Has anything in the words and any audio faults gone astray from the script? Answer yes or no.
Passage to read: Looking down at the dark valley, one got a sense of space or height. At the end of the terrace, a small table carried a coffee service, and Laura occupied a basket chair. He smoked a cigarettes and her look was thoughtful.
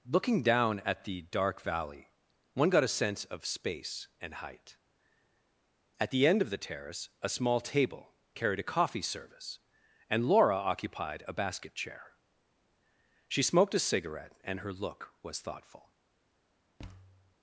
yes